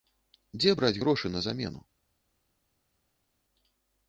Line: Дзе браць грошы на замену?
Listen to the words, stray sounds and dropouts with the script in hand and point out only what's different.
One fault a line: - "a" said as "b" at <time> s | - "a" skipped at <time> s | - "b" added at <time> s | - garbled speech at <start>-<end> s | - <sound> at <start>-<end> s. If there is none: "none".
none